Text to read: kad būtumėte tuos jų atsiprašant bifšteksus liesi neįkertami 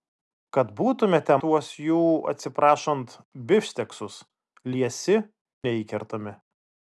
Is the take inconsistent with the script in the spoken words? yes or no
no